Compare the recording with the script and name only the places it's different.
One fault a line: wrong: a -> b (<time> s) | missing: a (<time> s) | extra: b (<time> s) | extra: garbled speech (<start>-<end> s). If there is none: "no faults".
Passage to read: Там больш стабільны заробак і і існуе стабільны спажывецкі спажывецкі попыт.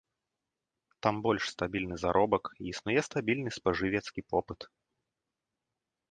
missing: і (2.7 s)
missing: спажывецкі (4.2 s)